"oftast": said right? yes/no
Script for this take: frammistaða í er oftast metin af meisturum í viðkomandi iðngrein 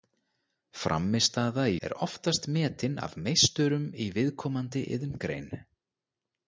yes